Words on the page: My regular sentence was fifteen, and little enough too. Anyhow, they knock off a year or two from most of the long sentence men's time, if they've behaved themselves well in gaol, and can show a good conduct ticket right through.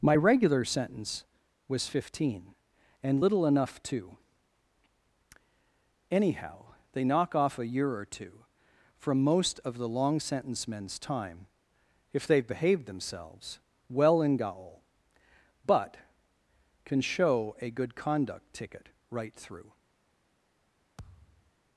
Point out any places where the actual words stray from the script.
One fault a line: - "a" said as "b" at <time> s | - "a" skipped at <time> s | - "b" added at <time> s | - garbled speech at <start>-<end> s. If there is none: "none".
- "and" said as "but" at 15.7 s